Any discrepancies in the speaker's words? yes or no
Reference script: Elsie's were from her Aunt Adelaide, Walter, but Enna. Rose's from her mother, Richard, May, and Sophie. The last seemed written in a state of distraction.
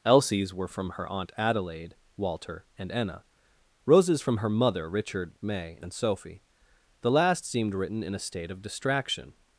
yes